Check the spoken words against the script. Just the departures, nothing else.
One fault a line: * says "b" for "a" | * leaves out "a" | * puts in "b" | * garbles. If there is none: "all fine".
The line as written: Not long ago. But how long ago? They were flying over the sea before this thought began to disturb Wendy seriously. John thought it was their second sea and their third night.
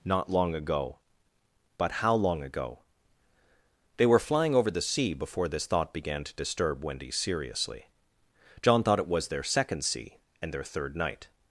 all fine